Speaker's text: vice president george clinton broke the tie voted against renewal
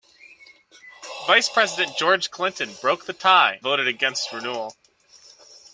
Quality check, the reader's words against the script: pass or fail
pass